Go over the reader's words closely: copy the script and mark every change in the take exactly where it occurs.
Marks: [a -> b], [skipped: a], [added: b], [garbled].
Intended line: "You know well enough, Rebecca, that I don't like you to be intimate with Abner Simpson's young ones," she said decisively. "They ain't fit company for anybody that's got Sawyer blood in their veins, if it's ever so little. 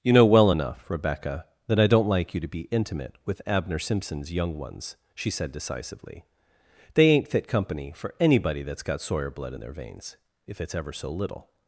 "You know well enough, Rebecca, that I don't like you to be intimate with Abner Simpson's young ones," she said decisively. "They ain't fit company for anybody that's got Sawyer blood in their veins, if it's ever so little.